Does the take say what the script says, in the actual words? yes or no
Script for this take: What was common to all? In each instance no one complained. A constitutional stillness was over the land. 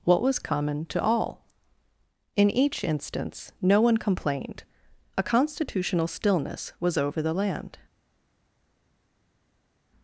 yes